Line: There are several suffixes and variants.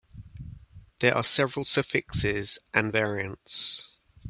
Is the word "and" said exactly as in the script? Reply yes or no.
yes